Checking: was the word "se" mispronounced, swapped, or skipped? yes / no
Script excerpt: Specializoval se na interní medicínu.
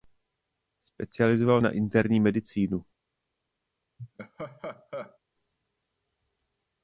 yes